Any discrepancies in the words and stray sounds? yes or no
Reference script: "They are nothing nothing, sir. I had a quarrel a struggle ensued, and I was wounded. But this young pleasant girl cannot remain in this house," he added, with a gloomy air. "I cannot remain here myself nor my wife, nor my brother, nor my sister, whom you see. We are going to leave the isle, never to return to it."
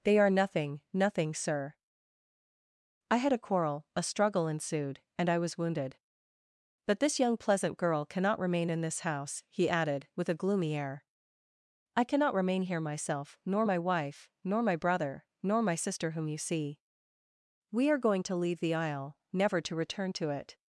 no